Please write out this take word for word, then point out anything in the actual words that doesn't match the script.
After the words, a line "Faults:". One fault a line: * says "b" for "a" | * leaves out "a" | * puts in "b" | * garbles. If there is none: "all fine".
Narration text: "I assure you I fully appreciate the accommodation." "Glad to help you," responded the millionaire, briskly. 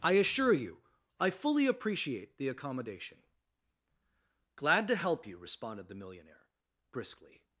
"I assure you I fully appreciate the accommodation." "Glad to help you," responded the millionaire, briskly.
Faults:
all fine